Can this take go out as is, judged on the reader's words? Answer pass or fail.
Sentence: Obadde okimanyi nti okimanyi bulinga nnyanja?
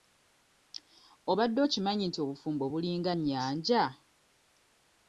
fail